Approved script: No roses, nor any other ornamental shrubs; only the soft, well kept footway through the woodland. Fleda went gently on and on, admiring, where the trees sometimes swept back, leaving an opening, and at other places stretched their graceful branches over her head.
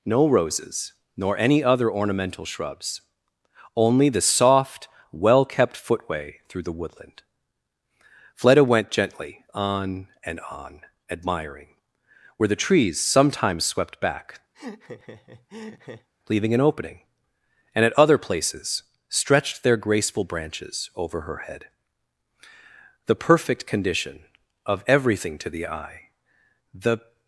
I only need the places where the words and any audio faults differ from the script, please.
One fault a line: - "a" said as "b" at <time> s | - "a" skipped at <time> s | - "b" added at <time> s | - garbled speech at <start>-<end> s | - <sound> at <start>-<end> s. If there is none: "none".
- laugh at 14.5-16.1 s
- "The perfect condition of everything to the eye the" added at 23.1 s